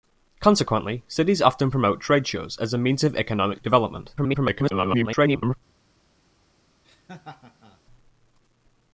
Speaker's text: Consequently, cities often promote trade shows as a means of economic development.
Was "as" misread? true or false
false